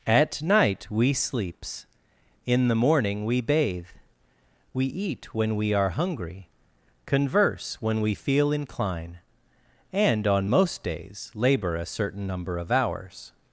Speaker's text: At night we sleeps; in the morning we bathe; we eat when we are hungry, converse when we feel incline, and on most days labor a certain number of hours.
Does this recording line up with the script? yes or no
yes